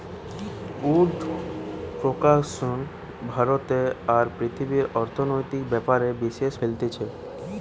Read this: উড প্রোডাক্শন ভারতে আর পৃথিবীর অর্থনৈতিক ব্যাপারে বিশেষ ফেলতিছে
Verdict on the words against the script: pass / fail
pass